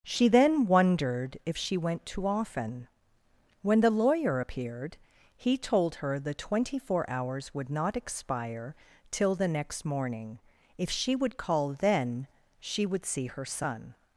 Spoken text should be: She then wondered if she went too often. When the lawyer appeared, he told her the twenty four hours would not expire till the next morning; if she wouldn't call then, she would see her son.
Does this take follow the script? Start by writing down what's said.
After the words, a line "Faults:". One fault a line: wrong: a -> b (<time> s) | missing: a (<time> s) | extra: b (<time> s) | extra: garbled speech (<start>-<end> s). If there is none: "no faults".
She then wondered if she went too often. When the lawyer appeared, he told her the twenty four hours would not expire till the next morning; if she would call then, she would see her son.
Faults:
wrong: wouldn't -> would (11.2 s)